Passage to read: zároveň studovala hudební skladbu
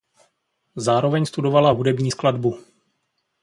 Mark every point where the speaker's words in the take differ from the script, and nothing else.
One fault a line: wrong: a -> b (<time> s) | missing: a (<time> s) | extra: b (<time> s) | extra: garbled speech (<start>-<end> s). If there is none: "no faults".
no faults